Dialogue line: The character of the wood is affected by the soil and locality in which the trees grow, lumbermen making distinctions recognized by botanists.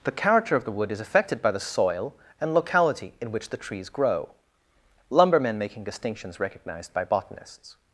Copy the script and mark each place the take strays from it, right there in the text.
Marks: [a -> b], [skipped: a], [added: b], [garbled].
The character of the wood is affected by the soil and locality in which the trees grow, lumbermen making distinctions recognized by botanists.